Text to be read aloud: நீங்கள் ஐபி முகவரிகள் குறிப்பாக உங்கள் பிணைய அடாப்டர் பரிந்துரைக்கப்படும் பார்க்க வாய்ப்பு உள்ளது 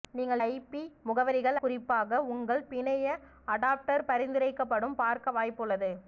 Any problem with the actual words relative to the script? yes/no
no